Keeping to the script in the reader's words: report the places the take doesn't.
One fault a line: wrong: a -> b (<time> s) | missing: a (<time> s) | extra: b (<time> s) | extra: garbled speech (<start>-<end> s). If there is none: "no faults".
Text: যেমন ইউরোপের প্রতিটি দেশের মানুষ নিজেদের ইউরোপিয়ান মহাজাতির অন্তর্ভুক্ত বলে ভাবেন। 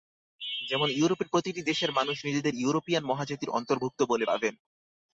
no faults